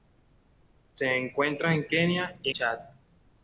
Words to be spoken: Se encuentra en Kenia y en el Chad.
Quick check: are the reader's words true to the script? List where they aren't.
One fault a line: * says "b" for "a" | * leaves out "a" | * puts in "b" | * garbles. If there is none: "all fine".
* leaves out "en el"